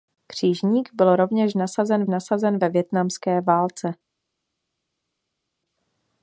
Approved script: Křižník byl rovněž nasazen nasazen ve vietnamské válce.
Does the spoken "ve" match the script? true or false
true